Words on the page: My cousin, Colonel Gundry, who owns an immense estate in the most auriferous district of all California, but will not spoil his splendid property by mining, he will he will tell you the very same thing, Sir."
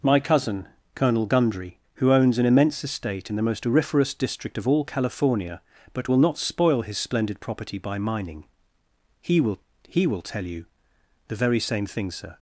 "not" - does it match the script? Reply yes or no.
yes